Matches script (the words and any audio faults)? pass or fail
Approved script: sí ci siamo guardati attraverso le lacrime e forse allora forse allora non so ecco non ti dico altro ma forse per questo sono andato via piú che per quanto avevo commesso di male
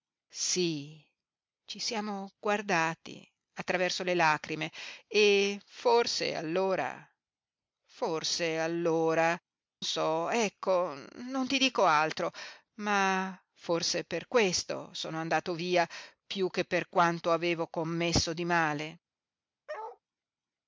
fail